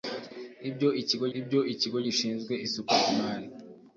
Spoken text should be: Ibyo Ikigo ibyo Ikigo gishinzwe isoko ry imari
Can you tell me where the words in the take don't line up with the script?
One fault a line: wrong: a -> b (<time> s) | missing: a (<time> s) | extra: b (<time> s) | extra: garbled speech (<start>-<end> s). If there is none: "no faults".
no faults